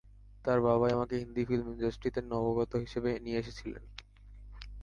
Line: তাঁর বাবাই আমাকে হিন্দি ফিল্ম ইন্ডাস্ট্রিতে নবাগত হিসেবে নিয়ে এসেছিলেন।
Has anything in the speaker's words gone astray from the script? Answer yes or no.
no